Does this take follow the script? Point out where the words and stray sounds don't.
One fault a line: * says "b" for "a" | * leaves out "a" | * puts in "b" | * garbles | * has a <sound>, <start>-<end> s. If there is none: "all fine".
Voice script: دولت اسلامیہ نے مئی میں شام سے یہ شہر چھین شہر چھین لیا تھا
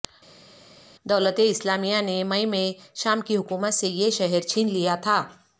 * puts in "کی حکومت"
* leaves out "شہر چھین"